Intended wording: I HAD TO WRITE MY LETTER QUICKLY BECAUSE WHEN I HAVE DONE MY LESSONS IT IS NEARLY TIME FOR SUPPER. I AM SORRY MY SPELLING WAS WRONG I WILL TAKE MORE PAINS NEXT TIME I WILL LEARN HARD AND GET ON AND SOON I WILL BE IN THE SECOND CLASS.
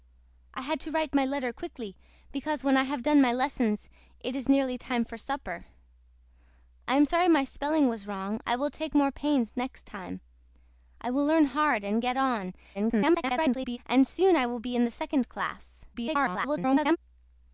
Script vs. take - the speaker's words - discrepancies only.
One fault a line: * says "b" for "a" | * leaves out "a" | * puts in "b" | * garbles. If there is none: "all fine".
* garbles
* garbles